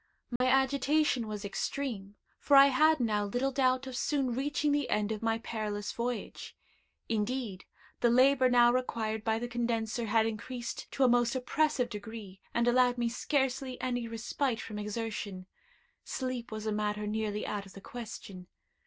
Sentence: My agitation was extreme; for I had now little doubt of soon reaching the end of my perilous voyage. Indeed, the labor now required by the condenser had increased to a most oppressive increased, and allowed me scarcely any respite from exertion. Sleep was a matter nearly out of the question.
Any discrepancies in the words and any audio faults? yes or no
yes